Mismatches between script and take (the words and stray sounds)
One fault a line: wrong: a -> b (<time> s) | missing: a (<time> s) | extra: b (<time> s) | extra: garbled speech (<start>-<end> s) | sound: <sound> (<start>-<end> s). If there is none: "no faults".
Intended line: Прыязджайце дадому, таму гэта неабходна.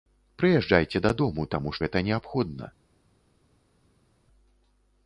no faults